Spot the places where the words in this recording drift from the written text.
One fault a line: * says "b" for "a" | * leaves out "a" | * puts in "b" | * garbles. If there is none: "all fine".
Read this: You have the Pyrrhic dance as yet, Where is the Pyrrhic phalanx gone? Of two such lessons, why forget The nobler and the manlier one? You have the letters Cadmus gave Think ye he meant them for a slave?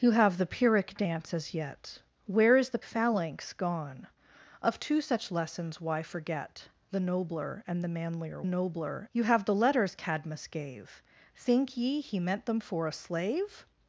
* leaves out "Pyrrhic"
* says "nobler" for "one"